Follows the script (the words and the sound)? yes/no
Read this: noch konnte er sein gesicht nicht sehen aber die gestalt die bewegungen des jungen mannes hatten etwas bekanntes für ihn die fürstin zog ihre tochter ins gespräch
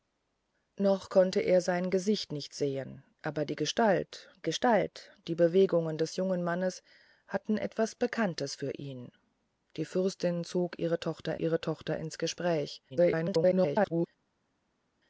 no